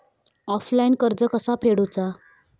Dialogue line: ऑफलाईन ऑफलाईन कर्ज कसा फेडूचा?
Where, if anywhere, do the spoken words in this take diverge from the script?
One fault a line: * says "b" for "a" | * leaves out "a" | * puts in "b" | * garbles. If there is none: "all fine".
* leaves out "ऑफलाईन"